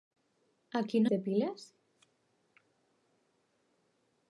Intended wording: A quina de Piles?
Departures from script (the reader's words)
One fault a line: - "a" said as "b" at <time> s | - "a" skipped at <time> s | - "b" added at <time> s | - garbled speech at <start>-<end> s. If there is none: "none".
none